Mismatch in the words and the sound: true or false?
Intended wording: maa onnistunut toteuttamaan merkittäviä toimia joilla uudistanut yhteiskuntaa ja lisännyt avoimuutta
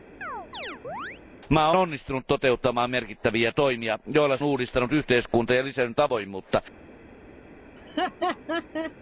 true